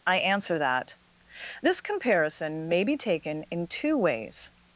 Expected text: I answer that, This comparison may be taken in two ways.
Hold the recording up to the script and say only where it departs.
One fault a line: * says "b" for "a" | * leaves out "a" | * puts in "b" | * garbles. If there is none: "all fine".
all fine